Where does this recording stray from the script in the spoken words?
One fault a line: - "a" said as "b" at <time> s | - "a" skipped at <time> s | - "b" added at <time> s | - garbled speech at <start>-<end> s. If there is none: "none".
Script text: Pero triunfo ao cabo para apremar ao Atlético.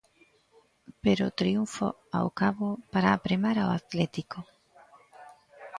none